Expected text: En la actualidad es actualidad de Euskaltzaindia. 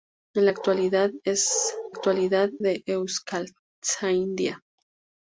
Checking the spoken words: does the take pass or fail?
pass